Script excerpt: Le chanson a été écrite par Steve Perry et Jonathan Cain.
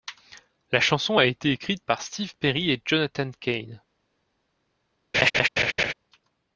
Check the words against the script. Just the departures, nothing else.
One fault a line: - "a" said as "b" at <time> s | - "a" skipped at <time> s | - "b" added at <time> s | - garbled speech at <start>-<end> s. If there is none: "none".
- "Le" said as "La" at 0.7 s